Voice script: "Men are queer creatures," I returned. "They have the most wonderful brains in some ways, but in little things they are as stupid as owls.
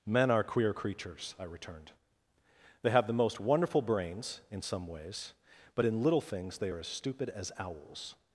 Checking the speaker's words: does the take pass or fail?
pass